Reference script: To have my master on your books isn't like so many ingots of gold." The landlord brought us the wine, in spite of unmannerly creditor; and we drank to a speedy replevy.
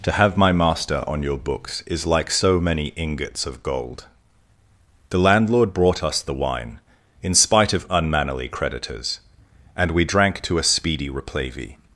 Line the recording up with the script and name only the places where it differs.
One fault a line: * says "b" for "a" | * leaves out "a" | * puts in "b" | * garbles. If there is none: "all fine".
* says "is" for "isn't"
* says "creditors" for "creditor"